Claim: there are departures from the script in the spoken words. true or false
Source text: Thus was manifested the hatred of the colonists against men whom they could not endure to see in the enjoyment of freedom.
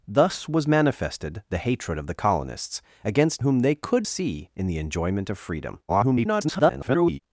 true